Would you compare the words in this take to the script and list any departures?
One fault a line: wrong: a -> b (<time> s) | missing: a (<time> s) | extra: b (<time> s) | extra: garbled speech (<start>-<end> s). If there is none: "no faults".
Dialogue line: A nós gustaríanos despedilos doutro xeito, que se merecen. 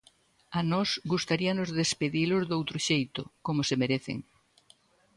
wrong: que -> como (3.5 s)